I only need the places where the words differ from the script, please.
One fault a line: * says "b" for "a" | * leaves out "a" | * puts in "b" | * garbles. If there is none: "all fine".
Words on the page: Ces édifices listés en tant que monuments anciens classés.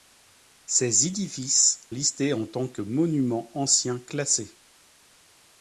all fine